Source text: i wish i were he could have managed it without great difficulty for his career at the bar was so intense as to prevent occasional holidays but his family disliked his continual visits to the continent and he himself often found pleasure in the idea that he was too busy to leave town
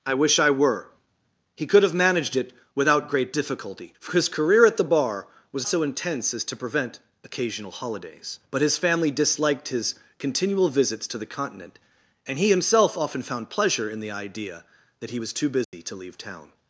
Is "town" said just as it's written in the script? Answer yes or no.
yes